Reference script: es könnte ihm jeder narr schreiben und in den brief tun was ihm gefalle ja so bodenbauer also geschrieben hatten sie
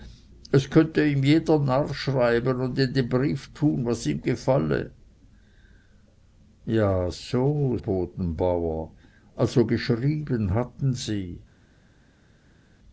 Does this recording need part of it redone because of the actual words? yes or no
no